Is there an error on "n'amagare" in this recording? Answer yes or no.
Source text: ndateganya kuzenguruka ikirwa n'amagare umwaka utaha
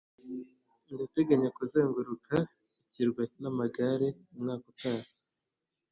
no